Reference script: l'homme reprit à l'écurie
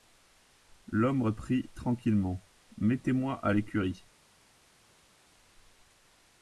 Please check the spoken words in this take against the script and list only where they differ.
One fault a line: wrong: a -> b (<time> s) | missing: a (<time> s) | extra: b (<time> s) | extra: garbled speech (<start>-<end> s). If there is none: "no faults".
extra: tranquillement mettez moi (1.7 s)